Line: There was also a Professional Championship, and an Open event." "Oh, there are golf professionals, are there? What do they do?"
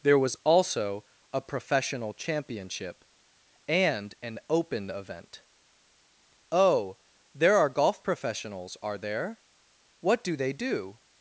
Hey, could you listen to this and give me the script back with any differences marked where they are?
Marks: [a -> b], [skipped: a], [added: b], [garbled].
There was also a Professional Championship, and an Open event." "Oh, there are golf professionals, are there? What do they do?"